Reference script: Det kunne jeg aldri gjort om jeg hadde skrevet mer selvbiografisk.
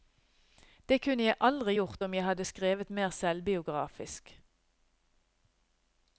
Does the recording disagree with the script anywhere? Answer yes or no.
no